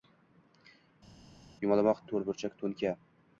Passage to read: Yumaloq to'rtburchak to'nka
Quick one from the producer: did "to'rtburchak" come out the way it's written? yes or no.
yes